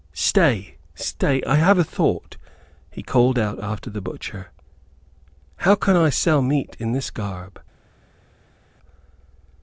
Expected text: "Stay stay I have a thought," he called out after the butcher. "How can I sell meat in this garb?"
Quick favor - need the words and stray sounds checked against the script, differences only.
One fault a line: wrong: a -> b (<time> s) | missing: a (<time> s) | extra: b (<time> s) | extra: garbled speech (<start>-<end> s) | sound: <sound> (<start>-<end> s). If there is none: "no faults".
no faults